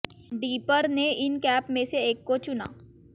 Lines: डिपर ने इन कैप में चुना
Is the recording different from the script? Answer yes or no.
yes